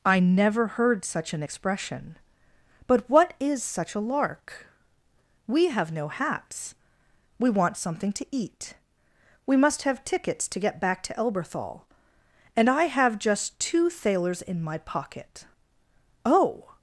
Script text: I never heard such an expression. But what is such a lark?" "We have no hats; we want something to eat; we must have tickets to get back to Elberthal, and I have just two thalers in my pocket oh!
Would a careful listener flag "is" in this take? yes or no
no